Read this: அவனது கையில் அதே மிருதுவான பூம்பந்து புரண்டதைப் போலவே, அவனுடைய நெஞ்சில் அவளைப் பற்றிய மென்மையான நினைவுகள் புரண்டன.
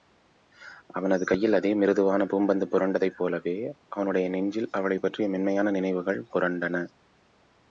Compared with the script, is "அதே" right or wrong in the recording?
right